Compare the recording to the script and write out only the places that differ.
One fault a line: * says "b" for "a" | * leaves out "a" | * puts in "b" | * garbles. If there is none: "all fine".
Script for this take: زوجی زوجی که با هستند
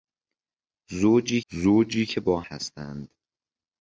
all fine